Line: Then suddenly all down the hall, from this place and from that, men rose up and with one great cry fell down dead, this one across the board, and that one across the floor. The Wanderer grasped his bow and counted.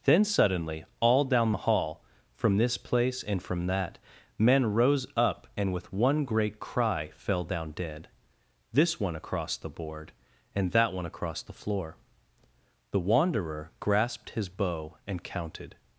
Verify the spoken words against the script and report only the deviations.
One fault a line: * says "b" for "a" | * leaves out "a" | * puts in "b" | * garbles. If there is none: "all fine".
all fine